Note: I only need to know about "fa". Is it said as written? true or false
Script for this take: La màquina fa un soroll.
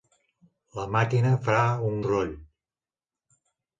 true